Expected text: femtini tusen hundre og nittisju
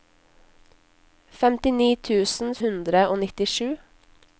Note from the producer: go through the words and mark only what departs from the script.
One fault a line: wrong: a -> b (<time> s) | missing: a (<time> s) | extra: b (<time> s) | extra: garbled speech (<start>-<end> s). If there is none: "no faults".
no faults